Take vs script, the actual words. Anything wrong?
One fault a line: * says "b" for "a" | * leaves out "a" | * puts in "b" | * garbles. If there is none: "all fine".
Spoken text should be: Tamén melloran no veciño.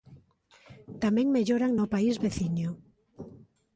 * puts in "país"